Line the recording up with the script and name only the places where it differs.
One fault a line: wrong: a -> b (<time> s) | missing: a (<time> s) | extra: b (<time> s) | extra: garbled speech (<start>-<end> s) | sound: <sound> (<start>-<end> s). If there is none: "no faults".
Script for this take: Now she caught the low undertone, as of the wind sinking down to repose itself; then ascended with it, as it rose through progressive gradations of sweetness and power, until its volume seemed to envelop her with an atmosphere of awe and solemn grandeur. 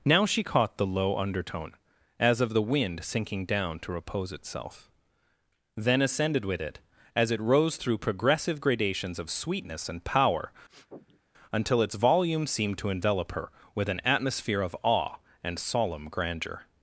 sound: sniff (10.7-11.2 s)